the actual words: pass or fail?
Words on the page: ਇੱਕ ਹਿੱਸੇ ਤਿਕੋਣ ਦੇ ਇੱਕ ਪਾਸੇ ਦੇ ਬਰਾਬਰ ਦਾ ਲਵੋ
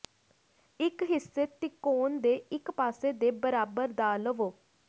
pass